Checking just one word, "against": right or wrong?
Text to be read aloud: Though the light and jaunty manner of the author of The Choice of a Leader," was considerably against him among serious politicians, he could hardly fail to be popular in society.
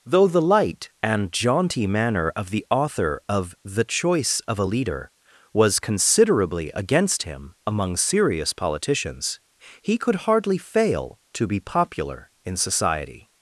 right